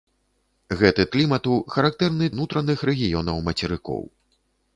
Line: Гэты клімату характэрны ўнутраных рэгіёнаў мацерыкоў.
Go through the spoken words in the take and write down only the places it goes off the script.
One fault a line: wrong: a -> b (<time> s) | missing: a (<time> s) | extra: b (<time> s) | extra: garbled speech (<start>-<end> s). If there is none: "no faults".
no faults